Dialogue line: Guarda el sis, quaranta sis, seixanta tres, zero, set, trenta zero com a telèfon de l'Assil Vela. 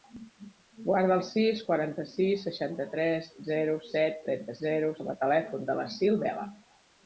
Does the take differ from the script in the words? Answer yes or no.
no